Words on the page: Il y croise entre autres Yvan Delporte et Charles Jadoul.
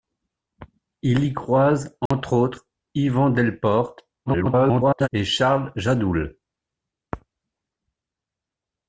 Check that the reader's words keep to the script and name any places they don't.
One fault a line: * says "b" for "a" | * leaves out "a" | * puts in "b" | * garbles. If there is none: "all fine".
* garbles